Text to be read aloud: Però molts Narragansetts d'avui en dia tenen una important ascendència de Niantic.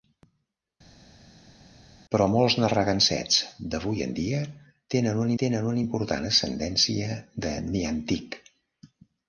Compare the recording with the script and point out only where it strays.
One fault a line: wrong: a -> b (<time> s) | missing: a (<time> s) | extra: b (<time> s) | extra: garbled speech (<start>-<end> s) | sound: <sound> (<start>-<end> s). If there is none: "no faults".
extra: tenen una (5.4 s)